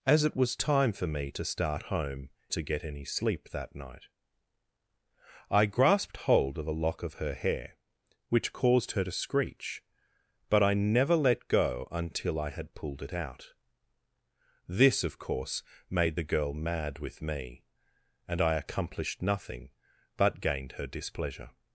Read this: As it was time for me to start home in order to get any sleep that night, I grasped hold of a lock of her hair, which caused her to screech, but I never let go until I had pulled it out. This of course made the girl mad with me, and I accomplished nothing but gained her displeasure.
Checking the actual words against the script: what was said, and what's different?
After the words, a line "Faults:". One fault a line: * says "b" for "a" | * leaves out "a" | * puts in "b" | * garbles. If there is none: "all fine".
As it was time for me to start home to get any sleep that night, I grasped hold of a lock of her hair, which caused her to screech, but I never let go until I had pulled it out. This of course made the girl mad with me, and I accomplished nothing but gained her displeasure.
Faults:
* leaves out "in order"